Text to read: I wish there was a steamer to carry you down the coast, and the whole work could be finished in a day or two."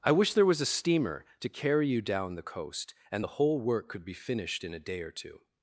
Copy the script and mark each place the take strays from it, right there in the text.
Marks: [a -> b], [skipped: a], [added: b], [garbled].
I wish there was a steamer to carry you down the coast, and the whole work could be finished in a day or two."